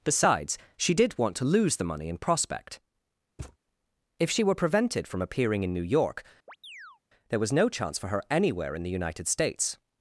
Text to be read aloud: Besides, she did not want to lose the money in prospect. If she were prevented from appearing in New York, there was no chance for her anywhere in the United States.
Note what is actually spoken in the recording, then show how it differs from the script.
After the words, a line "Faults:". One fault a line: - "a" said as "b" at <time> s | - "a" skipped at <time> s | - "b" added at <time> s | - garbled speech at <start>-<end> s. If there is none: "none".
Besides, she did want to lose the money in prospect. If she were prevented from appearing in New York, there was no chance for her anywhere in the United States.
Faults:
- "not" skipped at 1.2 s